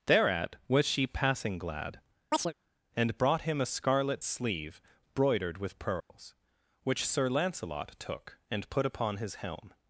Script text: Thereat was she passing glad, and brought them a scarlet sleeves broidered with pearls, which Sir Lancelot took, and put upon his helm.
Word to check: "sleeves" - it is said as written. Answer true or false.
false